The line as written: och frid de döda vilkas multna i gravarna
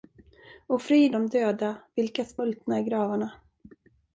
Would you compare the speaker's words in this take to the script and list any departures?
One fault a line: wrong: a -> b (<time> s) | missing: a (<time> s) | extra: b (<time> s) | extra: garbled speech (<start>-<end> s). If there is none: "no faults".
no faults